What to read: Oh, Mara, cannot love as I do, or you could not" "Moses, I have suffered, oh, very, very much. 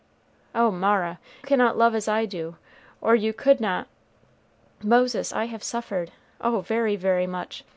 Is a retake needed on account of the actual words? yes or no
no